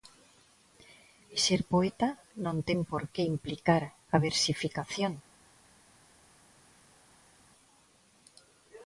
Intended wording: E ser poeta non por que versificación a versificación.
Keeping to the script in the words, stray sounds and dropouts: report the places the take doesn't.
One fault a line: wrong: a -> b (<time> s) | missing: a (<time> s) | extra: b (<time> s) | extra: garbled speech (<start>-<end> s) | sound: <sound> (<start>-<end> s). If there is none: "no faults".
extra: ten (2.7 s)
wrong: versificación -> implicar (3.4 s)